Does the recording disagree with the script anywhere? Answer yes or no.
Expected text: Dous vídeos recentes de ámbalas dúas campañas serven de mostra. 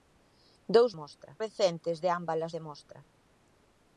yes